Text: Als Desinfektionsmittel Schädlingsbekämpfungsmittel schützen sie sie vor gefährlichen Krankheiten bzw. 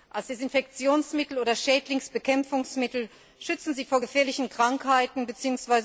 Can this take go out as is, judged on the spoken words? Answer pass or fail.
fail